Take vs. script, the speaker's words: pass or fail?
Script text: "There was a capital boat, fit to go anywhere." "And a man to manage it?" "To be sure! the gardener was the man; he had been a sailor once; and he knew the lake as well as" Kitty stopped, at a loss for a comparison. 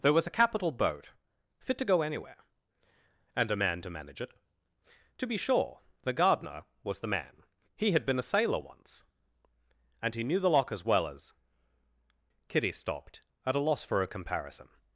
fail